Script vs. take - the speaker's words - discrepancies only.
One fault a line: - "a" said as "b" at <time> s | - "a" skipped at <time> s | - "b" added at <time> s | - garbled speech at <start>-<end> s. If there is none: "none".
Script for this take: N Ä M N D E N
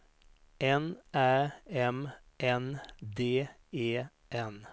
none